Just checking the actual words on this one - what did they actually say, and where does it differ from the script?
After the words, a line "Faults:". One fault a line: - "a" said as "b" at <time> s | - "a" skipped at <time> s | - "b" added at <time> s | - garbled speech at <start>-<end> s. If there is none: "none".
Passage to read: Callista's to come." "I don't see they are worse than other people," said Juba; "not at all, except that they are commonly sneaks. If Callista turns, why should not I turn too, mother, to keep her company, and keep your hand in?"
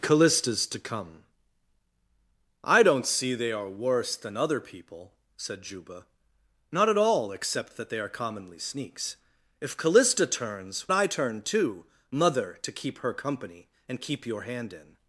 Callista's to come." "I don't see they are worse than other people," said Juba; "not at all, except that they are commonly sneaks. If Callista turns, I turn too, mother, to keep her company, and keep your hand in?"
Faults:
- "why should not" skipped at 10.9 s